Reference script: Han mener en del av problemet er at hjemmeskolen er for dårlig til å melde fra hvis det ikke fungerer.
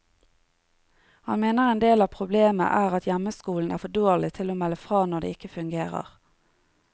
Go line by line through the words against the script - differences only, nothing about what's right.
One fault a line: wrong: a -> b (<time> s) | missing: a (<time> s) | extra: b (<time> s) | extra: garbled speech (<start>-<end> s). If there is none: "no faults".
wrong: hvis -> når (5.1 s)